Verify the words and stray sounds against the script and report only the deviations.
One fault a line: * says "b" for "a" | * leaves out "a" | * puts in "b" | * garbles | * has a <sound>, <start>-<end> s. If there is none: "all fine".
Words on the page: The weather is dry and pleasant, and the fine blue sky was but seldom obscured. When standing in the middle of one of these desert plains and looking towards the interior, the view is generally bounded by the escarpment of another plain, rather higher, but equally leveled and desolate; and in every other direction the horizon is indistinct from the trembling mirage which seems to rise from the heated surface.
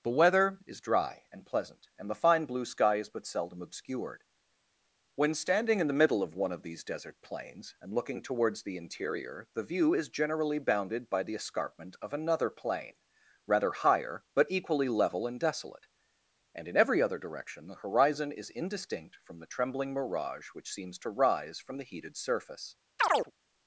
* says "is" for "was"
* says "level" for "leveled"
* has a chirp, 23.0-23.3 s